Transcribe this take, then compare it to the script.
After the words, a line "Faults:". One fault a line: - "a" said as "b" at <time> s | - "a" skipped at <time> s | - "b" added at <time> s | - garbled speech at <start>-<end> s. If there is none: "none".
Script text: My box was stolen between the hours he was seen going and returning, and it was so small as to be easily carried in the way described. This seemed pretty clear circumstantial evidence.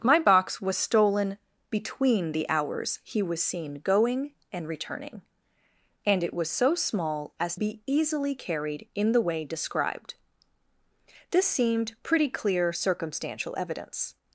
My box was stolen between the hours he was seen going and returning, and it was so small as be easily carried in the way described. This seemed pretty clear circumstantial evidence.
Faults:
- "to" skipped at 7.5 s